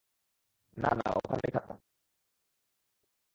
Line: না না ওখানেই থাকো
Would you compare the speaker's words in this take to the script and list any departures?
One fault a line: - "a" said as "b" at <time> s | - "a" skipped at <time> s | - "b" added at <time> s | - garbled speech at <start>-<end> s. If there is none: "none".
none